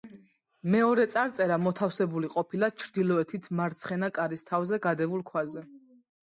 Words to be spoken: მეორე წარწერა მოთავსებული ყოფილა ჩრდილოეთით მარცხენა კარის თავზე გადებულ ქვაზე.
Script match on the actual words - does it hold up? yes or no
yes